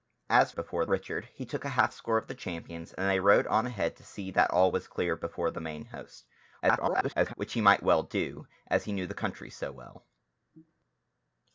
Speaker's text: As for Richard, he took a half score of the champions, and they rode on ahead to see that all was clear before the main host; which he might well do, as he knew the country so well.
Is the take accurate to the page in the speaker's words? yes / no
no